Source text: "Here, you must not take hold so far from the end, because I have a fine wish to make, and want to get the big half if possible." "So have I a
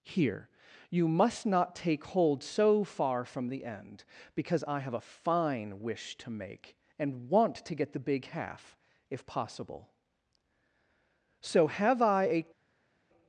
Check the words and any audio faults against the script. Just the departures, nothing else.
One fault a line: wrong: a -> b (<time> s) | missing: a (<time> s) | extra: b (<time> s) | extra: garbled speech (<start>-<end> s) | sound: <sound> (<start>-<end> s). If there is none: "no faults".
no faults